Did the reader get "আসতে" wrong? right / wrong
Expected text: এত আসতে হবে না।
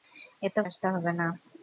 right